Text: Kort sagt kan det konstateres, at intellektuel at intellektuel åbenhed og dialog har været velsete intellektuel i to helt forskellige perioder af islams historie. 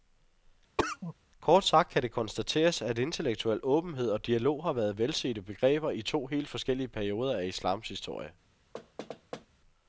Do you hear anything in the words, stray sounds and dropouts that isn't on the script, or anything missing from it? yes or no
yes